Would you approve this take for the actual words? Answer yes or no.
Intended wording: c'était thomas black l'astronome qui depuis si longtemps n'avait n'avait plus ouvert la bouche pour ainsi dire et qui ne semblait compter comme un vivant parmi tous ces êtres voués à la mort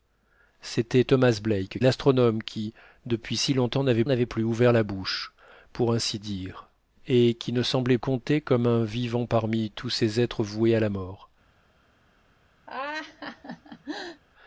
yes